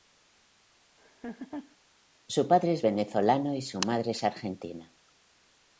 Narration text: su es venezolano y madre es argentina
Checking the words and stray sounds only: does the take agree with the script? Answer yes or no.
no